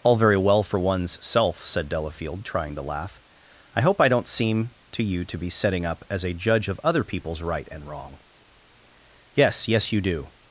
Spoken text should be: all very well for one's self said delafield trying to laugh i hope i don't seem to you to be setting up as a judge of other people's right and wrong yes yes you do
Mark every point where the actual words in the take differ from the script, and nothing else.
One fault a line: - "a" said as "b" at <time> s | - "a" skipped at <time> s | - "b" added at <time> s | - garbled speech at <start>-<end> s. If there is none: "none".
none